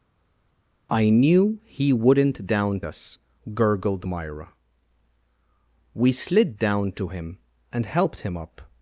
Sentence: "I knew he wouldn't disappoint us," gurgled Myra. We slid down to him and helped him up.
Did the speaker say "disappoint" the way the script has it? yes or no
no